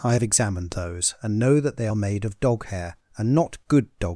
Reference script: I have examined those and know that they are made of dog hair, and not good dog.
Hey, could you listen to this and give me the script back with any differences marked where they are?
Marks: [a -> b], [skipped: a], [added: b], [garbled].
I have examined those and know that they are made of dog hair, and not good dog.